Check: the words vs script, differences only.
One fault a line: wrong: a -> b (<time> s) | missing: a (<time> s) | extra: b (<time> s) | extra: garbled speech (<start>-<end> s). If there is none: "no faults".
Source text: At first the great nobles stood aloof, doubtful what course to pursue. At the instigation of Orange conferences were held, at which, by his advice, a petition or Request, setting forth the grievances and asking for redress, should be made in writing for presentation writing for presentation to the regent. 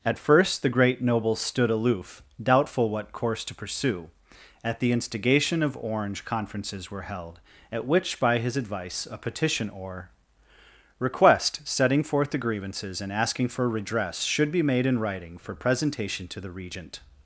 missing: writing for presentation (16.3 s)